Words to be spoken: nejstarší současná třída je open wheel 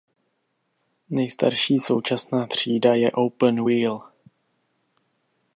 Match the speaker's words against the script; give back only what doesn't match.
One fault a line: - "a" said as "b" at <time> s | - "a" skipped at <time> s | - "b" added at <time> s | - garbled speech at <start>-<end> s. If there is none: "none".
none